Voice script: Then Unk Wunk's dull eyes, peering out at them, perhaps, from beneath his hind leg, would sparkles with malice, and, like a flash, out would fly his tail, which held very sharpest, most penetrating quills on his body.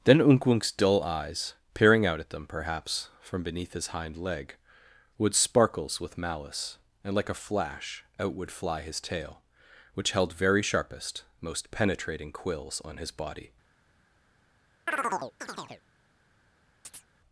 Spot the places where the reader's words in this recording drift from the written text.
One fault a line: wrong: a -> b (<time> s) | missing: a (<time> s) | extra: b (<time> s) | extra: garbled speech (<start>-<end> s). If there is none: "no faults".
no faults